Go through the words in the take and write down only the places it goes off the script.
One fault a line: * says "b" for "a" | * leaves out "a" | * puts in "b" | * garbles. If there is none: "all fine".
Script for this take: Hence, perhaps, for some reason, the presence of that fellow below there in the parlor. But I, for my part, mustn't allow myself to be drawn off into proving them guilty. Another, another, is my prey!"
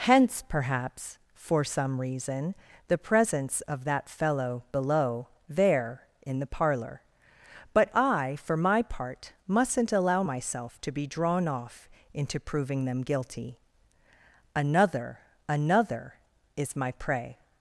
all fine